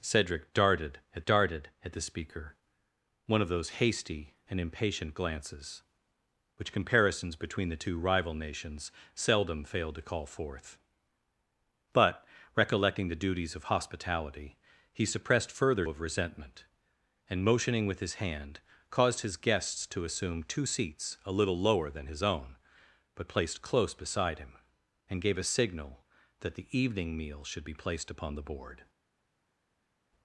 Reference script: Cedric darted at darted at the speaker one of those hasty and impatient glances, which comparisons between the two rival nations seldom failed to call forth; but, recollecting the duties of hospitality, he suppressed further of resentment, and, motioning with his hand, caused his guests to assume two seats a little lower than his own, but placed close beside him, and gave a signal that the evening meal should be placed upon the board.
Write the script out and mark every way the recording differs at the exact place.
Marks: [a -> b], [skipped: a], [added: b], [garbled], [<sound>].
Cedric darted at darted at the speaker one of those hasty and impatient glances, which comparisons between the two rival nations seldom failed to call forth; but, recollecting the duties of hospitality, he suppressed further of resentment, and, motioning with his hand, caused his guests to assume two seats a little lower than his own, but placed close beside him, and gave a signal that the evening meal should be placed upon the board.